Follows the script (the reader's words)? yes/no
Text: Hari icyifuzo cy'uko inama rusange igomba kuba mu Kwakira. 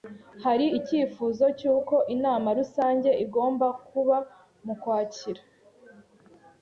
yes